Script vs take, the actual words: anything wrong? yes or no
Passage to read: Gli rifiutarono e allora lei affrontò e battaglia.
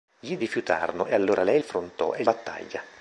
no